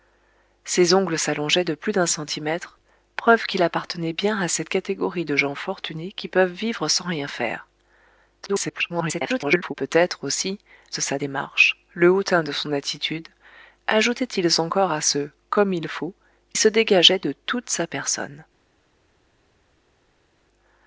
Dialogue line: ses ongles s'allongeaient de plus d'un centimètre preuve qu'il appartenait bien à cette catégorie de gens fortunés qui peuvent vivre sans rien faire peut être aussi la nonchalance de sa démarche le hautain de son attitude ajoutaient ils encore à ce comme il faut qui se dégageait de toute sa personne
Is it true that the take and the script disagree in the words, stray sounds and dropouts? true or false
true